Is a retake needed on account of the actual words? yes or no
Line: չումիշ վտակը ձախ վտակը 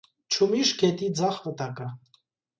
yes